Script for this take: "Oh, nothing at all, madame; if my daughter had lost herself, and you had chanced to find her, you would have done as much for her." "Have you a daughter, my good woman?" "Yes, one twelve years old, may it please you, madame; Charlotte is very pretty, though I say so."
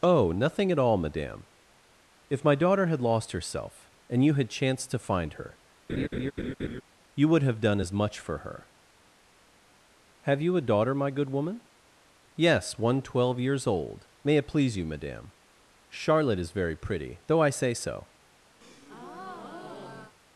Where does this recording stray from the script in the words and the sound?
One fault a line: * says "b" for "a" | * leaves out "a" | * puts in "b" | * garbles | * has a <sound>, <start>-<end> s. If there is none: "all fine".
* has a laugh, 5.9-6.8 s
* has a breath, 18.6-20.2 s